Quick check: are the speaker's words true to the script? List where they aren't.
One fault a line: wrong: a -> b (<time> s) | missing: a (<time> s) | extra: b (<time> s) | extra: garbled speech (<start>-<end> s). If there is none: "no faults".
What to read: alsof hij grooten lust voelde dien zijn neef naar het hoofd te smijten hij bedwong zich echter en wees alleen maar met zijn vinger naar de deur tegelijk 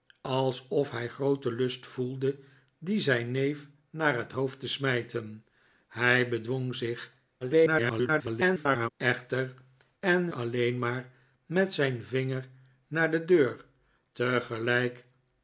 extra: garbled speech (7.4-8.9 s)
missing: wees (10.3 s)